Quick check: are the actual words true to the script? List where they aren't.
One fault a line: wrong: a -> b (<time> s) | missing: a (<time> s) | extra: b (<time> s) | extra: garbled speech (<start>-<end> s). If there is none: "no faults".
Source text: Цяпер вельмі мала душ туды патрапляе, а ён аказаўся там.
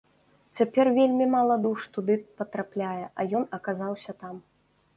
no faults